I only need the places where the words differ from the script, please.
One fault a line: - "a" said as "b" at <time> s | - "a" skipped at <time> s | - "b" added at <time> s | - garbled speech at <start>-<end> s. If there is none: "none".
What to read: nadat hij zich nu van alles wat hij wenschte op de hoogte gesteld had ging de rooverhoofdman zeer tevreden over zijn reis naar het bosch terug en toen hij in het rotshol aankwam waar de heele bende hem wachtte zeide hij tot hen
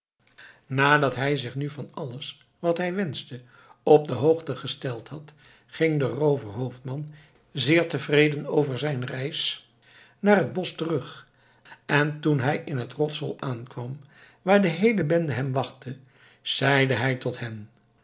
none